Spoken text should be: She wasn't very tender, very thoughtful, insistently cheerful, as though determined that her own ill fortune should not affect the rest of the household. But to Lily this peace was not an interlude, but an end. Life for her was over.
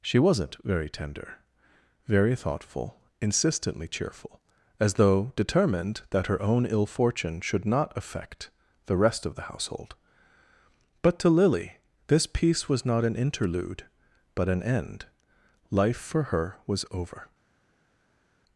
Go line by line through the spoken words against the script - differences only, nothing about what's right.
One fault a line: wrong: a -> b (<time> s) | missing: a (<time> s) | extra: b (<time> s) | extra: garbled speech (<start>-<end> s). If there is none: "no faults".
no faults